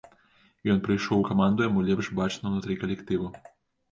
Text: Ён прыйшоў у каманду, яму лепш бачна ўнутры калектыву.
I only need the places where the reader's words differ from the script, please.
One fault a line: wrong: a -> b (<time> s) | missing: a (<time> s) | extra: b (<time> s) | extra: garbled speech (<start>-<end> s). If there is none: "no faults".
no faults